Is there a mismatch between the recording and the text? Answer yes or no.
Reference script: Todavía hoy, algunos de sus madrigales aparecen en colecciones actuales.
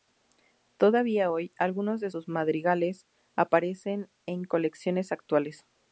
no